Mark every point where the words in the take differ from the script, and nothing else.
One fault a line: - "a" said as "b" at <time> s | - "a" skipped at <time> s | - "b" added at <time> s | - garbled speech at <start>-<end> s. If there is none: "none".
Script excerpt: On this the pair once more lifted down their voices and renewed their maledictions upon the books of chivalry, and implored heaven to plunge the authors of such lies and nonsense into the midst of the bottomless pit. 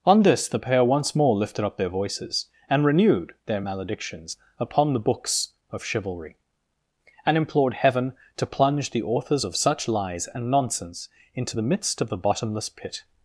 - "down" said as "up" at 1.6 s